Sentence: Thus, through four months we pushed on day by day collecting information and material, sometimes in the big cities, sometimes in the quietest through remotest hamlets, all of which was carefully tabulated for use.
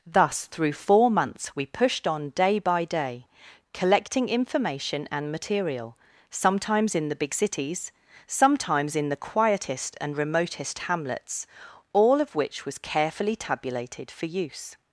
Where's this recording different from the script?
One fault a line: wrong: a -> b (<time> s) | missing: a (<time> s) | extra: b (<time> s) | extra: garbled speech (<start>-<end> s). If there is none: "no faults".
wrong: through -> and (10.0 s)